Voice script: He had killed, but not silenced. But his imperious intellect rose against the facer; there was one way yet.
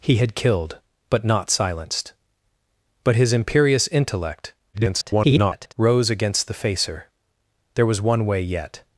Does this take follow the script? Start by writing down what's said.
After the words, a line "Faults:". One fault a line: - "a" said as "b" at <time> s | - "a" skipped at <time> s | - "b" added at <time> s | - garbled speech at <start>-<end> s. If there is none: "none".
He had killed, but not silenced. But his imperious intellect [garbled] rose against the facer; there was one way yet.
Faults:
- garbled speech at 4.7-5.7 s